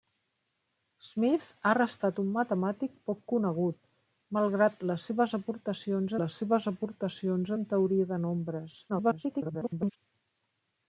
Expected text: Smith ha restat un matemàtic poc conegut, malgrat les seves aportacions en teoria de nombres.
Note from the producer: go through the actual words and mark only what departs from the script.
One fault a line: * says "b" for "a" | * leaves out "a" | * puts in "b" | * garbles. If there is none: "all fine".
* puts in "les seves aportacions"
* garbles